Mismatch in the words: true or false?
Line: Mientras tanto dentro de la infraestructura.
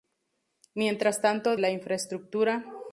true